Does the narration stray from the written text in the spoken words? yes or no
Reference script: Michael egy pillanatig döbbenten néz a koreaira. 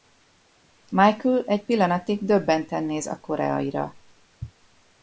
no